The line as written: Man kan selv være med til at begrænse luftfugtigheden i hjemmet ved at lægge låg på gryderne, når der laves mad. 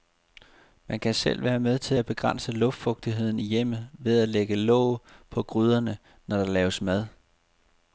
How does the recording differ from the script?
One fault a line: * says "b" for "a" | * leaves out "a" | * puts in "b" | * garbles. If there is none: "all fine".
all fine